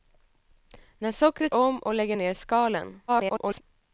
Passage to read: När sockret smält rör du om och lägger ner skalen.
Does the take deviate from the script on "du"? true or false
true